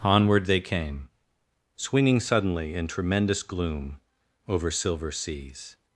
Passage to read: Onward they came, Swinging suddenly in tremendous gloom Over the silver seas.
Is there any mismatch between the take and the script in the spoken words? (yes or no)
yes